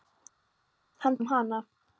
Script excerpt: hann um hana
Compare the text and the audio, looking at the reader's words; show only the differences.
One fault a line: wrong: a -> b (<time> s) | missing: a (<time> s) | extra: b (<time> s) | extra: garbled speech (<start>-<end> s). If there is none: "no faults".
no faults